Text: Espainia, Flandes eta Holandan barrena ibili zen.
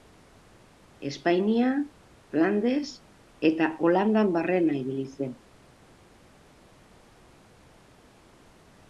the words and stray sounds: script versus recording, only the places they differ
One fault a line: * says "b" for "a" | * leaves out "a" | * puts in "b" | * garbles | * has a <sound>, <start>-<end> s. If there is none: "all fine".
all fine